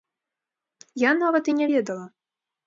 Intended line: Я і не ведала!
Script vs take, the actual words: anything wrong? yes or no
yes